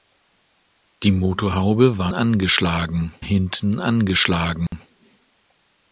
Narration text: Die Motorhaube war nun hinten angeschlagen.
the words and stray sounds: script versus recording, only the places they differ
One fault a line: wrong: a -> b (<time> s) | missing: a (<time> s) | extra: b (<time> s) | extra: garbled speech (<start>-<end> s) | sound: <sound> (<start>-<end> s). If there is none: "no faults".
wrong: nun -> angeschlagen (2.1 s)
sound: dropout (4.7-4.7 s)